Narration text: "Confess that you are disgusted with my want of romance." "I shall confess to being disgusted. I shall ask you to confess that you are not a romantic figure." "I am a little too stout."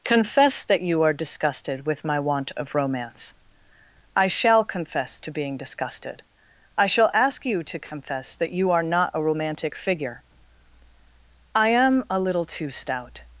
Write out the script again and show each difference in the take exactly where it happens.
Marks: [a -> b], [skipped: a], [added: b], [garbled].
"Confess that you are disgusted with my want of romance." "I shall confess to being disgusted. I shall ask you to confess that you are not a romantic figure." "I am a little too stout."